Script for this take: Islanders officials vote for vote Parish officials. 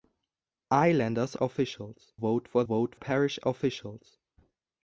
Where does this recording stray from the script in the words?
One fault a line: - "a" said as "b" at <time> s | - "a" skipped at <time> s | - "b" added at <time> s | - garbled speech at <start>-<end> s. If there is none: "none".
none